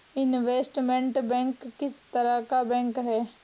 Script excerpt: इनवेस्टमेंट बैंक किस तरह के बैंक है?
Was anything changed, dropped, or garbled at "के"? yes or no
yes